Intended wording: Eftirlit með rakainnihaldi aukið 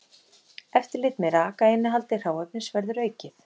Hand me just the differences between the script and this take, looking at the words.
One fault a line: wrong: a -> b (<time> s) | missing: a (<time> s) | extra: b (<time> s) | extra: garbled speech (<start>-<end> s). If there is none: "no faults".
extra: hráefnis verður (2.2 s)